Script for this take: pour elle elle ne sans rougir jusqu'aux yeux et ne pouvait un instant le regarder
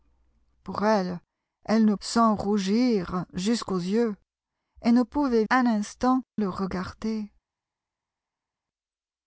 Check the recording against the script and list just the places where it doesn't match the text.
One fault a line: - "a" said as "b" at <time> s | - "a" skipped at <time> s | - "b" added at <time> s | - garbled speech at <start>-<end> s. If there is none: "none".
none